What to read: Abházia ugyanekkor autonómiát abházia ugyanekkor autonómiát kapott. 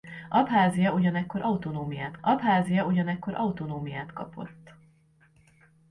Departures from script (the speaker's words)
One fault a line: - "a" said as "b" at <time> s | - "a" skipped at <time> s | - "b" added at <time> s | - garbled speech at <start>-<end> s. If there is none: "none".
none